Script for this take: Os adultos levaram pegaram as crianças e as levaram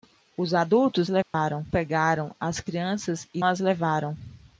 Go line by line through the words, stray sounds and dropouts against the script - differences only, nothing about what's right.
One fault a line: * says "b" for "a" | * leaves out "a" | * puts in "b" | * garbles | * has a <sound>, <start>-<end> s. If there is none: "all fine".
* has a dropout, 1.2-1.3 s